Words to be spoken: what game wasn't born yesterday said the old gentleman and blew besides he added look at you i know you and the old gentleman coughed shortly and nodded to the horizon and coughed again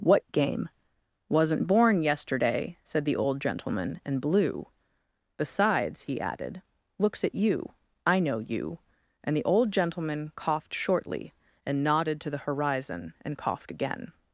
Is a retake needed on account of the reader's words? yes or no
yes